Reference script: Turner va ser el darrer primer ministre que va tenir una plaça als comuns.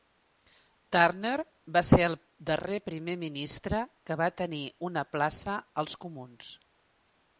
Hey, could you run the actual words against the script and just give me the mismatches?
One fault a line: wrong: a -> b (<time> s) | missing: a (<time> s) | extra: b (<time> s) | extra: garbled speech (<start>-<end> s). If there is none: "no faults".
no faults